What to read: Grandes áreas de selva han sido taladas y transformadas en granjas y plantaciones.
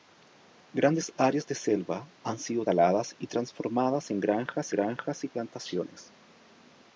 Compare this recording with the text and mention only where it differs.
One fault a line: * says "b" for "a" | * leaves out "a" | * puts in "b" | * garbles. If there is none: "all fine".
* puts in "granjas"